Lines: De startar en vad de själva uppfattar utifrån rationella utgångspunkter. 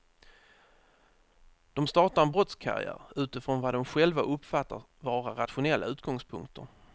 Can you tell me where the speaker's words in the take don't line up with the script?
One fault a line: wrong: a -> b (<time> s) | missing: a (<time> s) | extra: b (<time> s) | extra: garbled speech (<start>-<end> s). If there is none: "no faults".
extra: brottskarriär utifrån (2.3 s)
wrong: utifrån -> vara (5.0 s)